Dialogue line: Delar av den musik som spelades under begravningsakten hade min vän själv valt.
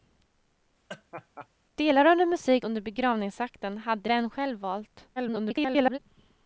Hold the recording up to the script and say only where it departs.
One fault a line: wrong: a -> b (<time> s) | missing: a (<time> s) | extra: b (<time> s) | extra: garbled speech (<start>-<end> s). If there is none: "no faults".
missing: som spelades (2.7 s)
missing: min (4.1 s)
extra: garbled speech (5.2-6.0 s)